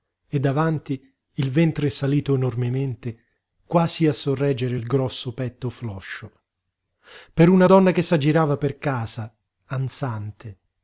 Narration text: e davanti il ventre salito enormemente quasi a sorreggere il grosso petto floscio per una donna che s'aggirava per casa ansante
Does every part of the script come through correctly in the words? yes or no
yes